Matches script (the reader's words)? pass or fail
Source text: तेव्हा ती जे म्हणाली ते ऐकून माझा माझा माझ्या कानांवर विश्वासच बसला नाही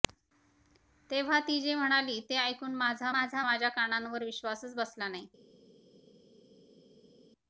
pass